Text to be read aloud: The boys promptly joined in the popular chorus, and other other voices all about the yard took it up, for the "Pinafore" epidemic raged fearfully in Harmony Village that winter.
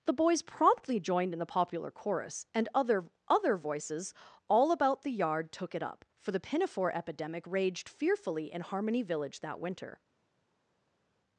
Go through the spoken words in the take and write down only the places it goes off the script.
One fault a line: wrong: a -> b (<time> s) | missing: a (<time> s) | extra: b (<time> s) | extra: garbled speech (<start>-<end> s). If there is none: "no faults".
no faults